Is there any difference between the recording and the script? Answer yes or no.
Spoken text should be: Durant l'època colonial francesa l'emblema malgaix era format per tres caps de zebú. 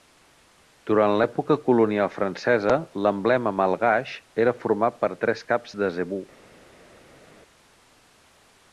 no